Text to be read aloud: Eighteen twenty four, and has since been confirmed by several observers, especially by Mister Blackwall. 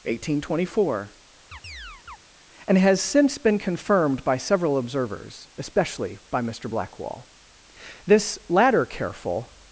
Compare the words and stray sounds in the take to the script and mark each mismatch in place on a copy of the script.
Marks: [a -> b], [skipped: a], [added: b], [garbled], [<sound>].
Eighteen twenty four, [chirp] and has since been confirmed by several observers, especially by Mister Blackwall. [added: This latter careful]